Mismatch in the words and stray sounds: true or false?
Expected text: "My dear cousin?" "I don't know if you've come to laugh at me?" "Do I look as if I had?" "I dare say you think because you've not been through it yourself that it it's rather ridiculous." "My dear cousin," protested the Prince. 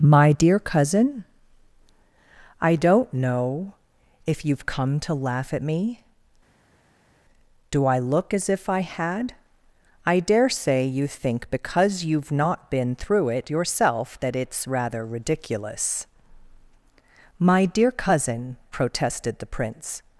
true